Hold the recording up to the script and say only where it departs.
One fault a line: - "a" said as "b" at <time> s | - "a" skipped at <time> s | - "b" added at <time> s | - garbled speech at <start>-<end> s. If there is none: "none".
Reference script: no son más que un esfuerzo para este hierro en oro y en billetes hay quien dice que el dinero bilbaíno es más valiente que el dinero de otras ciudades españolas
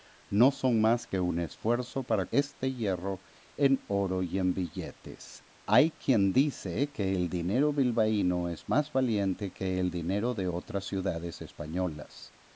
none